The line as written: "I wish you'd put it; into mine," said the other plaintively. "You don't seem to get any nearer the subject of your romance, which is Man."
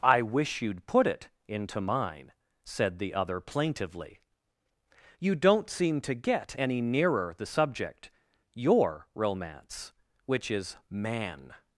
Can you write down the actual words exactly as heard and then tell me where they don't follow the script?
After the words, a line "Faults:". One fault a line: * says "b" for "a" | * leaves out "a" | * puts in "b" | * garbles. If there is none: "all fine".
"I wish you'd put it; into mine," said the other plaintively. "You don't seem to get any nearer the subject your romance, which is Man."
Faults:
* leaves out "of"